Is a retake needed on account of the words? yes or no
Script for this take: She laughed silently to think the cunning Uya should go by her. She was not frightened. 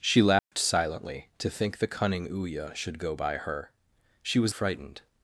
yes